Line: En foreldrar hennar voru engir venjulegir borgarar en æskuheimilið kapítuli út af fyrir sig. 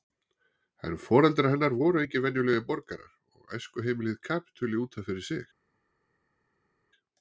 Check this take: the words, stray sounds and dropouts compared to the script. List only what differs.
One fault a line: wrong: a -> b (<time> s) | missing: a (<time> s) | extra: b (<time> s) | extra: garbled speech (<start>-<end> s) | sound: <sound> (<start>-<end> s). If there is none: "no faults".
wrong: en -> og (3.4 s)